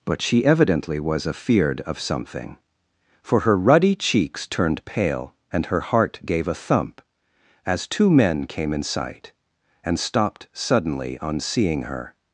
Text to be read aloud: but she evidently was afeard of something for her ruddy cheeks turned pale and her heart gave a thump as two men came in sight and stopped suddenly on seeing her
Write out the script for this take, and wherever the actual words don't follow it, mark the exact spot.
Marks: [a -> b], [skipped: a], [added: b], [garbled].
but she evidently was afeard of something for her ruddy cheeks turned pale and her heart gave a thump as two men came in sight and stopped suddenly on seeing her